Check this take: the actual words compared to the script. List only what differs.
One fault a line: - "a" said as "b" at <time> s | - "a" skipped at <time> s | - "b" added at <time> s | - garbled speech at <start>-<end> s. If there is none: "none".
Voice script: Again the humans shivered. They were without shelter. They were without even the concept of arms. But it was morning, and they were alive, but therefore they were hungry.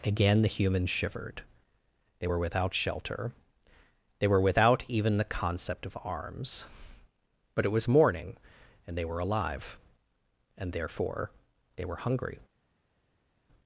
- "but" said as "and" at 10.6 s